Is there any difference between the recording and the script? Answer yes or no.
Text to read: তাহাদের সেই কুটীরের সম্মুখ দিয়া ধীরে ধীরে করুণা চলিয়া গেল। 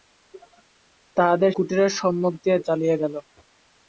yes